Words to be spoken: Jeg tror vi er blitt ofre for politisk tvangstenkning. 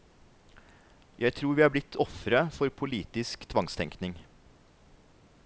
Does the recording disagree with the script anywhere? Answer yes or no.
no